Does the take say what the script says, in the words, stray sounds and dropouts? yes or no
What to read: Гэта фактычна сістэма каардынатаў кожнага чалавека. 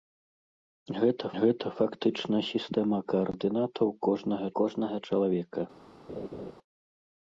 no